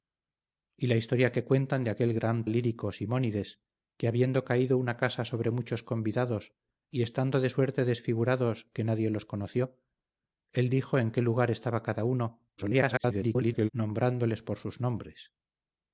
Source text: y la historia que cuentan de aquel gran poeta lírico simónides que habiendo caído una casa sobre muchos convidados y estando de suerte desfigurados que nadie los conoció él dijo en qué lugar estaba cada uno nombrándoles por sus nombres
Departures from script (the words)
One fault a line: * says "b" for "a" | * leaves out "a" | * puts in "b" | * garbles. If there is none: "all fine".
* leaves out "poeta"
* garbles